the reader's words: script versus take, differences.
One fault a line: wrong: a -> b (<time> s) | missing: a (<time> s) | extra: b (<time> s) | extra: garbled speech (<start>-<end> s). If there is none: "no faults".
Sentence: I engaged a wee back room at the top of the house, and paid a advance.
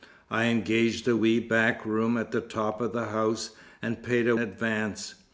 no faults